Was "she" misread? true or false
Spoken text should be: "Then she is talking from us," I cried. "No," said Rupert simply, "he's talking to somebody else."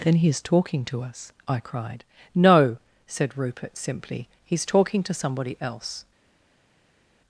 true